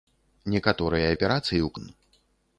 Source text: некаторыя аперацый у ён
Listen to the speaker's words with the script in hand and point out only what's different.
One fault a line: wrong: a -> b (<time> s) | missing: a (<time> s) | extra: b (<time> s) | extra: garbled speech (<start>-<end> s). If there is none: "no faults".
no faults